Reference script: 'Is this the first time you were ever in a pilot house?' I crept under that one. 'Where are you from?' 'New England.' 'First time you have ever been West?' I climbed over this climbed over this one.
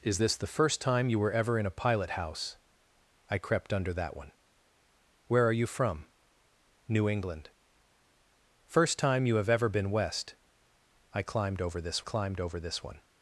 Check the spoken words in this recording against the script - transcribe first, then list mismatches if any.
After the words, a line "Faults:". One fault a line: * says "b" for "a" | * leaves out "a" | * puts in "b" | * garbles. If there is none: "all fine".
'Is this the first time you were ever in a pilot house?' I crept under that one. 'Where are you from?' 'New England.' 'First time you have ever been West?' I climbed over this climbed over this one.
Faults:
all fine